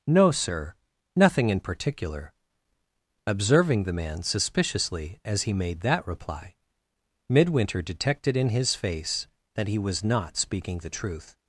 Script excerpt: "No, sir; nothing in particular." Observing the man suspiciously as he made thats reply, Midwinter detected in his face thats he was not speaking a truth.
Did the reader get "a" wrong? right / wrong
wrong